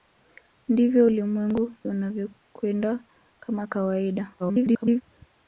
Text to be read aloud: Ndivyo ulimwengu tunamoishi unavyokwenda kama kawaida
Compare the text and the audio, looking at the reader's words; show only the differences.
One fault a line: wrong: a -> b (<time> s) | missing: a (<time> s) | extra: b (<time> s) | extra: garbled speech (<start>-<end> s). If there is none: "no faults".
missing: tunamoishi (1.7 s)
extra: garbled speech (4.4-5.0 s)